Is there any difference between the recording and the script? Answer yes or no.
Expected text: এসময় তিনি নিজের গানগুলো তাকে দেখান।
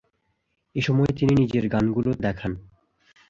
yes